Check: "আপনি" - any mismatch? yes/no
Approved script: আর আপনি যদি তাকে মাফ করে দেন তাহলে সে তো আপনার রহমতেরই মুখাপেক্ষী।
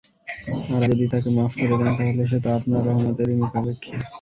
yes